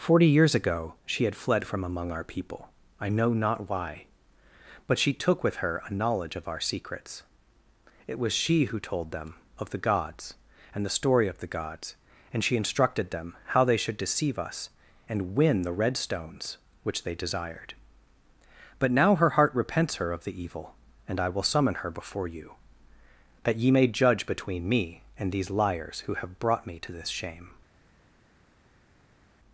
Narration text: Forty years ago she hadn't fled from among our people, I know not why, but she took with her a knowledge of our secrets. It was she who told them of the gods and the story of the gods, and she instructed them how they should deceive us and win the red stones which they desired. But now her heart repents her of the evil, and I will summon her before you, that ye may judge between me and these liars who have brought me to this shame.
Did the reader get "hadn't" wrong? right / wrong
wrong